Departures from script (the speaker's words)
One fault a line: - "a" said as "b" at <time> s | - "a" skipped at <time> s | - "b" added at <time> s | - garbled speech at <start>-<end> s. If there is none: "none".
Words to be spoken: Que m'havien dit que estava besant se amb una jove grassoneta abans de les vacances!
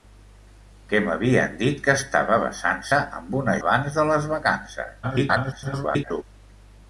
- "jove grassoneta" skipped at 3.6 s
- garbled speech at 5.0-6.2 s